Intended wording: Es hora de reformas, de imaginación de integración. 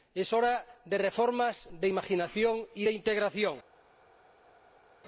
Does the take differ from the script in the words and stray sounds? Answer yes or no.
yes